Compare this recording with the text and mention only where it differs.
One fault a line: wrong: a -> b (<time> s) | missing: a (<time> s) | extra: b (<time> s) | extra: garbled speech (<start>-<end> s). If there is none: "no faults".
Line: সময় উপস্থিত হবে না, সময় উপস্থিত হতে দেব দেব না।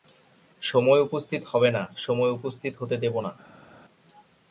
missing: দেব (3.1 s)